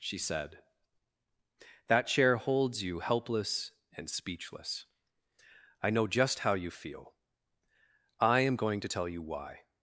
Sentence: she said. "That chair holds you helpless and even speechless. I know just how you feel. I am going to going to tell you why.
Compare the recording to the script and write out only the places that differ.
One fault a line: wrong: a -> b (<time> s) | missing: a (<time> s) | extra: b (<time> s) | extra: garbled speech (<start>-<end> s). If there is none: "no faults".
missing: even (4.1 s)
missing: going to (8.9 s)